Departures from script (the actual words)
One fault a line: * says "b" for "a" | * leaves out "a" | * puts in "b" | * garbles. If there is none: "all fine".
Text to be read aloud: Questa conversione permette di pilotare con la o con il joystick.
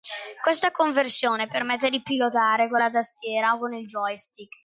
* puts in "tastiera"